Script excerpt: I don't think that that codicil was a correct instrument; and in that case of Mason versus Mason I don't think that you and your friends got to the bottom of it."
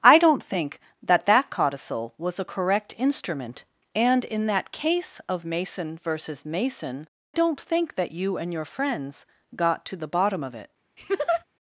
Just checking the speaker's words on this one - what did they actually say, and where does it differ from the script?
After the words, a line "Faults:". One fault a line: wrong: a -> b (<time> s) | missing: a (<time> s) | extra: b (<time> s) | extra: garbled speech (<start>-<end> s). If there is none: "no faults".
I don't think that that codicil was a correct instrument; and in that case of Mason versus Mason don't think that you and your friends got to the bottom of it."
Faults:
missing: I (7.1 s)